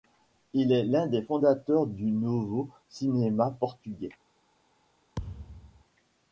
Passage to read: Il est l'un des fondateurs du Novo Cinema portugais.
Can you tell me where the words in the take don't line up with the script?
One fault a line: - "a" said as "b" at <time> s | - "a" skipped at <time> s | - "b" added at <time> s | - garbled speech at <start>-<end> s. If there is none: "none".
none